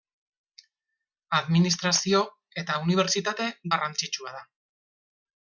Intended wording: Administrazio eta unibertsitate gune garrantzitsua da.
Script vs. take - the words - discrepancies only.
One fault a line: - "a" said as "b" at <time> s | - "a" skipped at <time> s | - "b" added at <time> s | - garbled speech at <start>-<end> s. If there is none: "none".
- "gune" skipped at 3.5 s